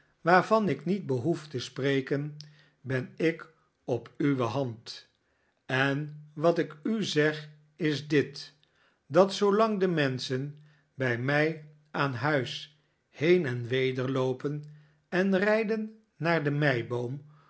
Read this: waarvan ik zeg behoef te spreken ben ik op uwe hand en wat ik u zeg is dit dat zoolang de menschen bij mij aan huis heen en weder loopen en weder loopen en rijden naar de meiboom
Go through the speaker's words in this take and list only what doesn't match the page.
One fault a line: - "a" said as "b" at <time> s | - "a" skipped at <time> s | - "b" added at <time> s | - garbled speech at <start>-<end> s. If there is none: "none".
- "zeg" said as "niet" at 0.9 s
- "weder loopen en" skipped at 15.4 s